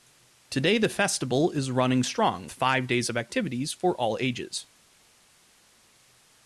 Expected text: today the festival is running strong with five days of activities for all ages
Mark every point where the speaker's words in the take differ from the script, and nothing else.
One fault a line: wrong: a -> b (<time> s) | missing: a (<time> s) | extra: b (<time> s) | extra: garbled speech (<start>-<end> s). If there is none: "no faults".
missing: with (2.5 s)